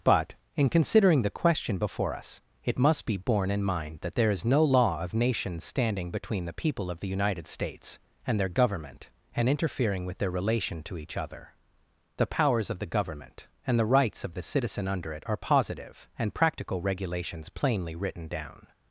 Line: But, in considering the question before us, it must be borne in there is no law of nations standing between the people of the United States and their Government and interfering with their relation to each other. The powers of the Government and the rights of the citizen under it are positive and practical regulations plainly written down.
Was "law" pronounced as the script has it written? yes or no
yes